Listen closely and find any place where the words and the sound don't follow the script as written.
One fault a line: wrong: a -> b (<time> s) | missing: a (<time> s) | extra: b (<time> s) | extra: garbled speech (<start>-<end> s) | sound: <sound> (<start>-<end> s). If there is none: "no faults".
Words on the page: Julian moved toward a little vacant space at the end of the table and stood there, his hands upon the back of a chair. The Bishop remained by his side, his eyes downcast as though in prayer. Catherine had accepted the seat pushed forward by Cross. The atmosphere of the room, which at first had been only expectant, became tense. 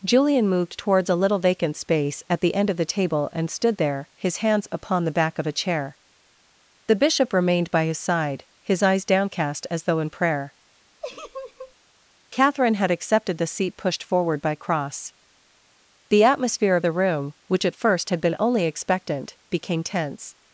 wrong: toward -> towards (0.8 s)
sound: laugh (11.0-11.7 s)